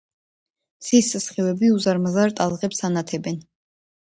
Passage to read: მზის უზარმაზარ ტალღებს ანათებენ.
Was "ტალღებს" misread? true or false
false